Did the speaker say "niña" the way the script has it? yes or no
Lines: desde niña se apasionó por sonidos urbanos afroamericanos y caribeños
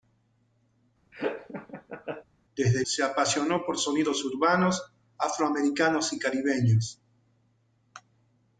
no